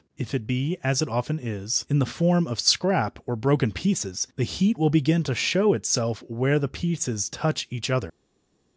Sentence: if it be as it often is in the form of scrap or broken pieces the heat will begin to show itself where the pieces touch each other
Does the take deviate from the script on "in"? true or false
false